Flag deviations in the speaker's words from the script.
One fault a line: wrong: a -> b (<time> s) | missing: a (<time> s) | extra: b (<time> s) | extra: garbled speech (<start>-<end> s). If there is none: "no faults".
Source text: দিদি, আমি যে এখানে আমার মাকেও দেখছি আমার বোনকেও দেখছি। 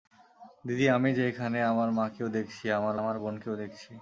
extra: আমার (3.0 s)